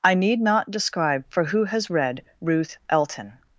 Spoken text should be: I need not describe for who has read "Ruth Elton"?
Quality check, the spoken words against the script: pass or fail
pass